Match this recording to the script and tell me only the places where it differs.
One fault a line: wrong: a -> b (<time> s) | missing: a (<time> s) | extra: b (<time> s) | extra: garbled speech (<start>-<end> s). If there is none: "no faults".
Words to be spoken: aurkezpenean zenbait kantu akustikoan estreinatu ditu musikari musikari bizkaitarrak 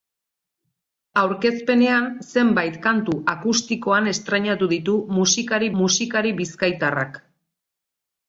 no faults